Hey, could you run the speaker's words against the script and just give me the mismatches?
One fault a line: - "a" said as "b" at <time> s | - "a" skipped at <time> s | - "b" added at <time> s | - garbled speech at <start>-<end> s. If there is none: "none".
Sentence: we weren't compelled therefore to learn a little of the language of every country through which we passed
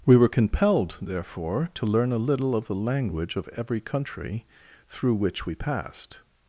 - "weren't" said as "were" at 0.1 s